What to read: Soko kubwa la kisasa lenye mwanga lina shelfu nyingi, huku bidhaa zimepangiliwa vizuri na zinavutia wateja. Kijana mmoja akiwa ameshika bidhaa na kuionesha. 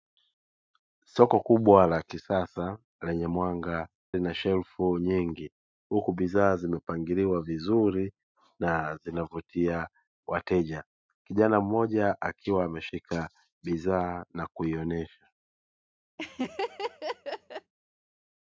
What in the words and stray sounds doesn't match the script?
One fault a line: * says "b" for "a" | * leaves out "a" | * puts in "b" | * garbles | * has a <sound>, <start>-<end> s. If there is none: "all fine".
* has a laugh, 16.2-17.7 s